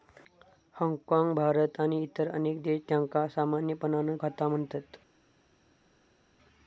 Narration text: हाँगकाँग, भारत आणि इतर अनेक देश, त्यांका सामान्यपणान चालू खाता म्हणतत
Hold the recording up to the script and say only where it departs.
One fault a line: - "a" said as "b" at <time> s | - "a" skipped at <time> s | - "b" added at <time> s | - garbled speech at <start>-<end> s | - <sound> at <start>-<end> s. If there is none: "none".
- "चालू" skipped at 4.2 s